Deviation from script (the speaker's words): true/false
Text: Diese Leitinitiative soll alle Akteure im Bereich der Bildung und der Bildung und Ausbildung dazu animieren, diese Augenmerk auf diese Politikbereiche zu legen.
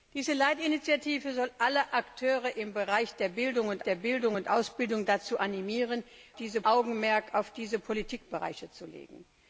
false